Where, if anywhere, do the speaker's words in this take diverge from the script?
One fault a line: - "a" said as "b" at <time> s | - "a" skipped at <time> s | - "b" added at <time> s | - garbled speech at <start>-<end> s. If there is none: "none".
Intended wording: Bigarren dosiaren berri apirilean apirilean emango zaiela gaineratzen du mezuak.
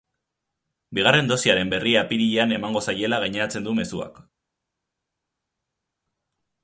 - "apirilean" skipped at 2.6 s